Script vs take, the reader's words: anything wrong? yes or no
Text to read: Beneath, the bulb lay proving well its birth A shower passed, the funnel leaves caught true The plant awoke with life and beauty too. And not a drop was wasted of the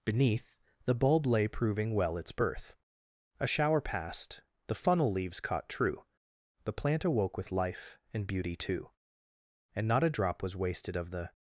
no